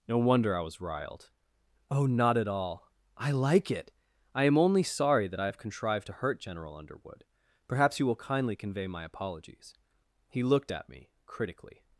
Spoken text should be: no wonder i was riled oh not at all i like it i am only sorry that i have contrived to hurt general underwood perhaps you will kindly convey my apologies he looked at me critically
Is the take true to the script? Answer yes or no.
yes